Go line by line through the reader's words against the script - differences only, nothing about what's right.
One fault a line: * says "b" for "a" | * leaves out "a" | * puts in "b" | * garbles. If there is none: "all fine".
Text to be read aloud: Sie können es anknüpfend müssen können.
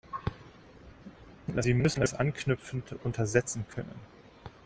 * says "müssen" for "können"
* says "untersetzen" for "müssen"